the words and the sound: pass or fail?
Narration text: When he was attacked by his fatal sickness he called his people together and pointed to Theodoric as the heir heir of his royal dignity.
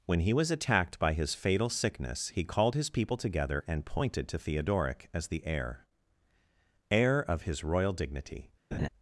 fail